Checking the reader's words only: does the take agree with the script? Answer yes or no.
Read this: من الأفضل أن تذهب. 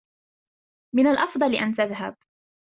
yes